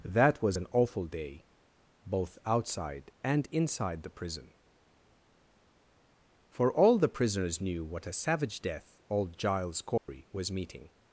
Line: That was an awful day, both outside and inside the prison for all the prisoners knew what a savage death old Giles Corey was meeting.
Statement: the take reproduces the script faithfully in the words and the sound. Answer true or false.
false